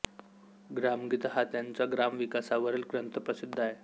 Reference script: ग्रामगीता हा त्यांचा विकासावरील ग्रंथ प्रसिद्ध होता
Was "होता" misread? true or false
true